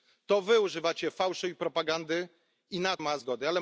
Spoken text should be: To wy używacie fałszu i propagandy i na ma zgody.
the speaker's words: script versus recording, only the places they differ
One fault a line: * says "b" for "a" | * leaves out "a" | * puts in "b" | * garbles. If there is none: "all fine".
all fine